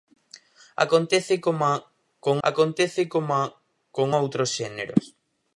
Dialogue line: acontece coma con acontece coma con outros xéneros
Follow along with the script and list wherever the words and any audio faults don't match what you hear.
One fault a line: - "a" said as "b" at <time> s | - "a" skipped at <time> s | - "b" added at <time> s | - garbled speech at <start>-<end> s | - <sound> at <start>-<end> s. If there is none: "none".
none